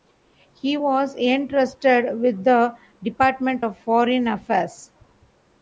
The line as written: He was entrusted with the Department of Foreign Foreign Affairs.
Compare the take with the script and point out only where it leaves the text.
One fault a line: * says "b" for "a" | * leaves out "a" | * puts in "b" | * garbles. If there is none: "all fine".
* leaves out "Foreign"